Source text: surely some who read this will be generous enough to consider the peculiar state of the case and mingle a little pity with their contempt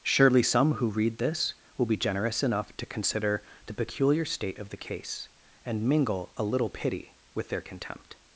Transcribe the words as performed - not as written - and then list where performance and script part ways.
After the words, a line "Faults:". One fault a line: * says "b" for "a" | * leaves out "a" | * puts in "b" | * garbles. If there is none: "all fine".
surely some who read this will be generous enough to consider the peculiar state of the case and mingle a little pity with their contempt
Faults:
all fine